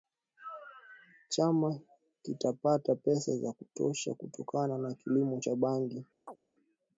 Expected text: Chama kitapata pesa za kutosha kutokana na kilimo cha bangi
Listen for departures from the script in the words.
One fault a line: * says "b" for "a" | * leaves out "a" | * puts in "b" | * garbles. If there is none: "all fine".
all fine